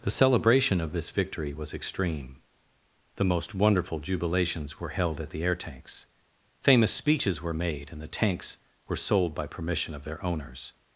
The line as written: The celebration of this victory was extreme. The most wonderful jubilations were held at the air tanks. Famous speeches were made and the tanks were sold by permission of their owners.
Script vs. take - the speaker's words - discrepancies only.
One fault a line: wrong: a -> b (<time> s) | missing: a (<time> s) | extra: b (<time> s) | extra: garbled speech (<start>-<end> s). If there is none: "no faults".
no faults